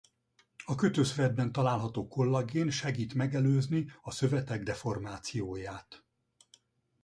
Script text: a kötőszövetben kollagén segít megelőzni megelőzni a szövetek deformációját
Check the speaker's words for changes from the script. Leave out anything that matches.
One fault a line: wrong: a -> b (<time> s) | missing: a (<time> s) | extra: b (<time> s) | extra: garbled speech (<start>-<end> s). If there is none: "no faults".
extra: található (1.5 s)
missing: megelőzni (3.9 s)